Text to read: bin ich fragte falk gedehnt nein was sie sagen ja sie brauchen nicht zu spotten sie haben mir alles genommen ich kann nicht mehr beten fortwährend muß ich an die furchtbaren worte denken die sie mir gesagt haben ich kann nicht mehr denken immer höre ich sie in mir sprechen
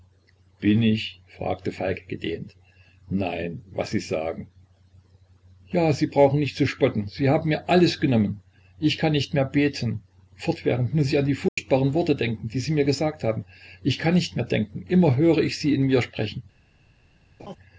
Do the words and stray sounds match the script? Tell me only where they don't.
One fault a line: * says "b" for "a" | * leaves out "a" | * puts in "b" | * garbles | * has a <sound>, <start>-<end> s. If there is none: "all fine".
* has a dropout, 11.5-11.6 s
* has a laugh, 17.4-17.6 s